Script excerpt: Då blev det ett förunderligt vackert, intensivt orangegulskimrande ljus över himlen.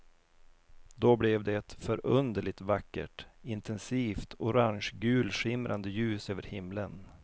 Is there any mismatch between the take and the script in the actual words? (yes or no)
no